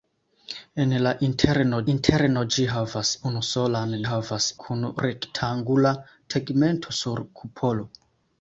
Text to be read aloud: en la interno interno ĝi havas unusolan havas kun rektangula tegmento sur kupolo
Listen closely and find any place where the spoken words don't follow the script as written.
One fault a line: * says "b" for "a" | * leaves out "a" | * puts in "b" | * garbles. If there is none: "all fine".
all fine